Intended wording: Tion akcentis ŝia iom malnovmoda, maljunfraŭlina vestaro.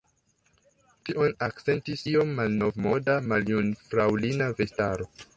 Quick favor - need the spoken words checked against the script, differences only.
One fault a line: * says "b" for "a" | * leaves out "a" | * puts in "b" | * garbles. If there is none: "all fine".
* leaves out "ŝia"